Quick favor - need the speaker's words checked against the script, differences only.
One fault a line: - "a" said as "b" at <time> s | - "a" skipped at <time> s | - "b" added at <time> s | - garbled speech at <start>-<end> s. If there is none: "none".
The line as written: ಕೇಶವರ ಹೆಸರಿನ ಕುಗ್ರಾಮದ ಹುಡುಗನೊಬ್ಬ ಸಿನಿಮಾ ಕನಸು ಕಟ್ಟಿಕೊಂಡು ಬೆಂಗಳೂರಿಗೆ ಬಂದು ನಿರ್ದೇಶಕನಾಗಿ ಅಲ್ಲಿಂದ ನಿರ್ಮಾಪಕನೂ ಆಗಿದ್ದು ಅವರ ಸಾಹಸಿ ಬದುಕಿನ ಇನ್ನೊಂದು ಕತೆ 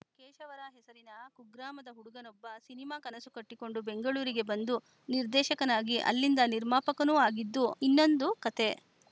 - "ಅವರ ಸಾಹಸಿ ಬದುಕಿನ" skipped at 7.7 s